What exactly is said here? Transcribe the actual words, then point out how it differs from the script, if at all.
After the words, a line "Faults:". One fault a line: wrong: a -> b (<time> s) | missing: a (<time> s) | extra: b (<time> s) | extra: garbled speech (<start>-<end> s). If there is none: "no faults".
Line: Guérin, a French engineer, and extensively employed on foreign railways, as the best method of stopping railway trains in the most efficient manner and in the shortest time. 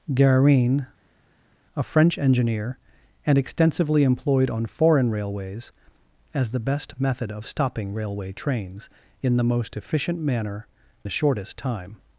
Guérin, a French engineer, and extensively employed on foreign railways, as the best method of stopping railway trains in the most efficient manner the shortest time.
Faults:
missing: and in (10.7 s)